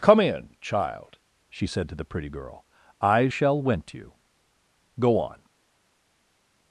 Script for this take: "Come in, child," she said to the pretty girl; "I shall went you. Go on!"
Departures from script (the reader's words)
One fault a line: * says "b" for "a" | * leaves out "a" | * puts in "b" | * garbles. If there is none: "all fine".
all fine